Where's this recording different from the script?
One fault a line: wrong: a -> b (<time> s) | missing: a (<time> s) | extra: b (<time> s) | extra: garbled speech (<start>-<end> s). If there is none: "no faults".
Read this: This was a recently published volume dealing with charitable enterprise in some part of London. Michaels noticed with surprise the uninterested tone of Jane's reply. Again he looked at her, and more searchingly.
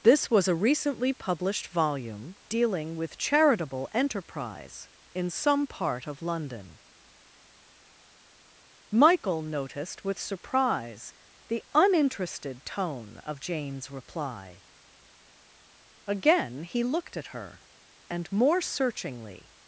wrong: Michaels -> Michael (8.9 s)